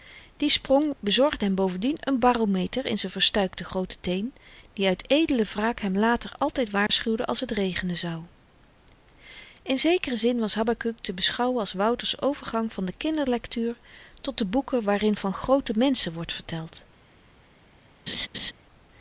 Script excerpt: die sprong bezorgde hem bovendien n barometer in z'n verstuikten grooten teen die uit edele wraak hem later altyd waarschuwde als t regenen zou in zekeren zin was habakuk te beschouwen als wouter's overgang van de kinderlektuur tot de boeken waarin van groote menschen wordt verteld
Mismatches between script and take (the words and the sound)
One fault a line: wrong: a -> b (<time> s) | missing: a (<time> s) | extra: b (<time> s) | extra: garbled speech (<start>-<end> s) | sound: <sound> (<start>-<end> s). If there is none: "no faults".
sound: dropout (6.9-6.9 s)
sound: laugh (18.1-18.5 s)